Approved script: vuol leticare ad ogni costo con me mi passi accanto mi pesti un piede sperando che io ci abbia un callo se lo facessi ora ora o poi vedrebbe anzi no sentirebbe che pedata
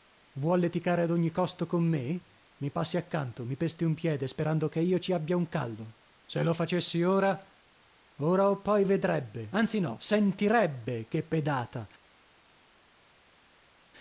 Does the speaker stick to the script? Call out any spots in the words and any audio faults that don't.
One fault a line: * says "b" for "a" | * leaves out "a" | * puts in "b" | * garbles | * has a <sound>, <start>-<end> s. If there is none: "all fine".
all fine